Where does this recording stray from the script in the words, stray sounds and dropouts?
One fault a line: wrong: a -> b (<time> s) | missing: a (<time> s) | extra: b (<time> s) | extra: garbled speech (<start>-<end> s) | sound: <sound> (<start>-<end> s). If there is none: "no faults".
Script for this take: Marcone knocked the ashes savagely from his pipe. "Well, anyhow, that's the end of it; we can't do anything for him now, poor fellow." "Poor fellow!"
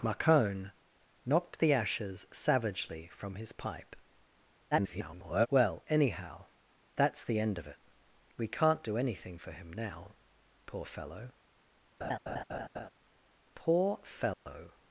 extra: garbled speech (4.7-5.5 s)
sound: laugh (12.0-12.9 s)
sound: dropout (14.3-14.5 s)